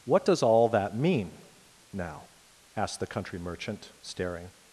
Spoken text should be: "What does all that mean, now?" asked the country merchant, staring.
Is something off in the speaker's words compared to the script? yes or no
no